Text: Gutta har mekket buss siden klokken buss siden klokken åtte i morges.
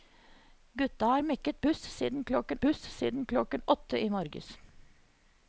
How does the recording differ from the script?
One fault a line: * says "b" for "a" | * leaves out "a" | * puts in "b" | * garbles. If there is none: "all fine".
all fine